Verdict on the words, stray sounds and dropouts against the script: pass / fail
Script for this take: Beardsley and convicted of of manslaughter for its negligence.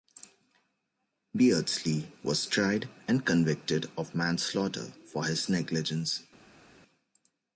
fail